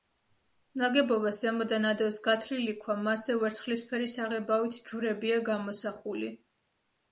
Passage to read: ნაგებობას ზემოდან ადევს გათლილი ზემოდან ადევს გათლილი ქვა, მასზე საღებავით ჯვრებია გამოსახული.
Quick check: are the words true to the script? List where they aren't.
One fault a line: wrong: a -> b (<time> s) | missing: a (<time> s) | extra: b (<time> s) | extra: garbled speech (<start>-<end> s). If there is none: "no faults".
missing: ზემოდან ადევს გათლილი (2.8 s)
extra: ვერცხლისფერი (3.5 s)